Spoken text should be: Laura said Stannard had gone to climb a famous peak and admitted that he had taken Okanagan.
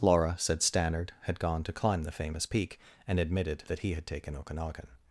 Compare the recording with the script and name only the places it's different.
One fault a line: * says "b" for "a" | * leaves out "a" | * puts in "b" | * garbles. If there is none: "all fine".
* says "the" for "a"